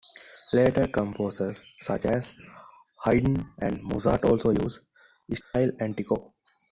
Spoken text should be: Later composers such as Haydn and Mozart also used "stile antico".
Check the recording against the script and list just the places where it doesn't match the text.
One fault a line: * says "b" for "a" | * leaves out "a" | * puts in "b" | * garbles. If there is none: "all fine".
all fine